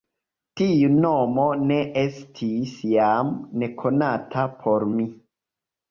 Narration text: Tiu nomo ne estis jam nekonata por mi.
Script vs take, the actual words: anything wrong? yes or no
no